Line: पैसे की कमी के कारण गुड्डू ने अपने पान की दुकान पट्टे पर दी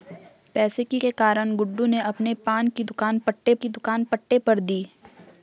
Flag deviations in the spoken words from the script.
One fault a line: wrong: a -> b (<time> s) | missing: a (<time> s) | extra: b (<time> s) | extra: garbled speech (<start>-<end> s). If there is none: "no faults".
missing: कमी (1.0 s)
extra: की दुकान पट्टे (3.5 s)